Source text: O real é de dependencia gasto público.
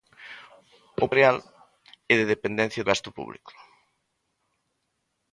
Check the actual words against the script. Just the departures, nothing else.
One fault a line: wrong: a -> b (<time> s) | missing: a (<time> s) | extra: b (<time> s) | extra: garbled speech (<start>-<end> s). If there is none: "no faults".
no faults